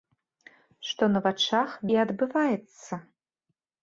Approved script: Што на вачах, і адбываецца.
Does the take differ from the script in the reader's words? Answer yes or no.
no